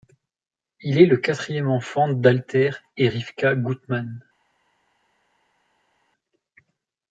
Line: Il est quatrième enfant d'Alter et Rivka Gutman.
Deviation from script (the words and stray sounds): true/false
true